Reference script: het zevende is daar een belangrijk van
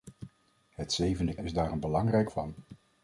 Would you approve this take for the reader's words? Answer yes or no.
yes